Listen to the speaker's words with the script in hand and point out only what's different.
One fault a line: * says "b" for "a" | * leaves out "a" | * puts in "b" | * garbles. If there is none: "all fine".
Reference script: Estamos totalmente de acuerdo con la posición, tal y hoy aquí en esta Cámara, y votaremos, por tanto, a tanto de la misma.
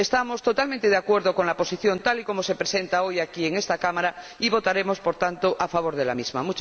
* puts in "como se presenta"
* says "favor" for "tanto"